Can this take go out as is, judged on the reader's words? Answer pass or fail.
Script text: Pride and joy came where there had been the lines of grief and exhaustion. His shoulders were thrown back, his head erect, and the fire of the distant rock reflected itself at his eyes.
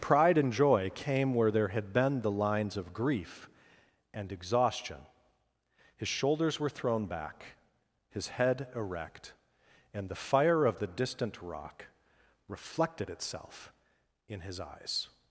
fail